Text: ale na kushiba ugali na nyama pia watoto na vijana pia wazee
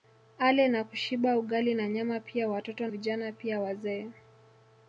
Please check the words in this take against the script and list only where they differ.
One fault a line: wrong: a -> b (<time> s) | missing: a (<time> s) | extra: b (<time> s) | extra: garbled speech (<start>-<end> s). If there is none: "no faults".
missing: na (2.9 s)